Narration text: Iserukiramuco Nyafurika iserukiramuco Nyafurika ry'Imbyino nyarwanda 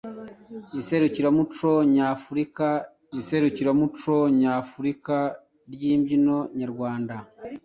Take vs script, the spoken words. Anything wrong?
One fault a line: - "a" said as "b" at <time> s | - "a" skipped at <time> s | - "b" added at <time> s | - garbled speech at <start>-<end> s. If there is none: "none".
none